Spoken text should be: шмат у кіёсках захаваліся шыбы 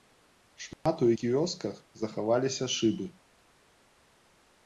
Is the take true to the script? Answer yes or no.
yes